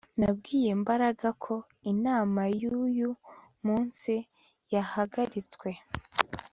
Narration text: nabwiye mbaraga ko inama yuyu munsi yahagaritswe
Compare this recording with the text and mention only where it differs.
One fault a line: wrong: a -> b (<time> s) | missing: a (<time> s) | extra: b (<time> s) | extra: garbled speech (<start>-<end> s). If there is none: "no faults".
no faults